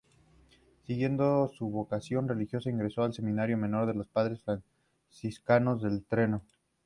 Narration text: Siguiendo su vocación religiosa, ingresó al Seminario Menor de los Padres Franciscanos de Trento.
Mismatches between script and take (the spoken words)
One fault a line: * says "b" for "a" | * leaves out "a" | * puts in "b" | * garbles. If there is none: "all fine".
all fine